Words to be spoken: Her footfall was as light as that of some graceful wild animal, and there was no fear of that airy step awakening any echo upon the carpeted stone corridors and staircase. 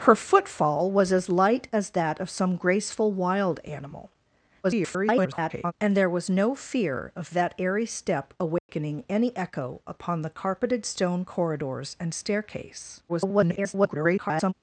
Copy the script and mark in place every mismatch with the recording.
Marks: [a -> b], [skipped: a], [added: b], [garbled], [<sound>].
Her footfall was as light as that of some graceful wild animal, [garbled] and there was no fear of that airy step awakening [dropout] any echo upon the carpeted stone corridors and staircase. [garbled]